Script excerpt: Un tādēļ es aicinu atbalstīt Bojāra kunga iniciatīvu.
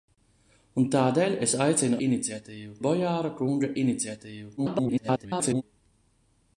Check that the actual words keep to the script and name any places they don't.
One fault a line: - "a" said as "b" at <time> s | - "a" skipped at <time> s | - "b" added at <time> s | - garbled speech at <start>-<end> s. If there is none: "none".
- "atbalstīt" said as "iniciatīvu" at 2.1 s
- garbled speech at 4.6-5.6 s